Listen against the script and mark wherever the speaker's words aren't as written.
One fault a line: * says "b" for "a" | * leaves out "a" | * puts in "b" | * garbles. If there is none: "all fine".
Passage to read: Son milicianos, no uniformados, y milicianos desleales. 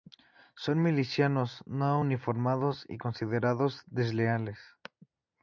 * says "considerados" for "milicianos"